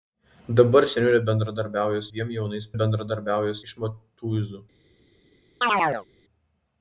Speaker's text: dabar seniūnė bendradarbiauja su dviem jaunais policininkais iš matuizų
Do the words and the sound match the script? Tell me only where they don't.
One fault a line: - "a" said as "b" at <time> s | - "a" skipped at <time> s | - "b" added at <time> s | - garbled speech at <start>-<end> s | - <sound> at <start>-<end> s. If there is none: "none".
- "su" skipped at 2.1 s
- "policininkais" said as "bendradarbiauja" at 2.8 s
- chirp at 5.6-6.1 s